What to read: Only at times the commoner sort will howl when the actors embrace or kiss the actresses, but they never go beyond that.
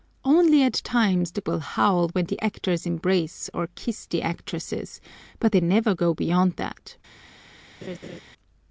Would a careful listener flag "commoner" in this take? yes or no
yes